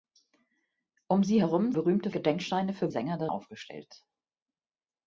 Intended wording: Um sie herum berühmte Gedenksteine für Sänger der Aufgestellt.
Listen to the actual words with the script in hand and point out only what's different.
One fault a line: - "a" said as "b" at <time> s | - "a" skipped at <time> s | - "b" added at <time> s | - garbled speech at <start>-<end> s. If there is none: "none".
none